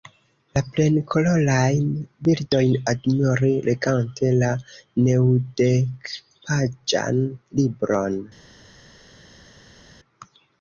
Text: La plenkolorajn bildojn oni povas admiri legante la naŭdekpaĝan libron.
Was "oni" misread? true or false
true